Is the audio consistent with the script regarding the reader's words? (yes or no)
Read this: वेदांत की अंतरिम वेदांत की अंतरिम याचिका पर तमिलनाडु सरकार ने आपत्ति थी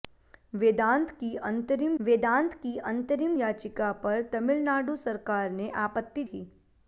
yes